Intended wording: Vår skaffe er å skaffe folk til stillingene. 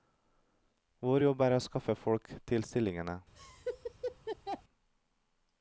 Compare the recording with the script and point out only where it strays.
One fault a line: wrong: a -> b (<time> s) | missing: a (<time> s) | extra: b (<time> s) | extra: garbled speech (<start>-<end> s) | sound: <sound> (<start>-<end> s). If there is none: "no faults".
wrong: skaffe -> jobb (1.2 s)
sound: laugh (3.3-4.6 s)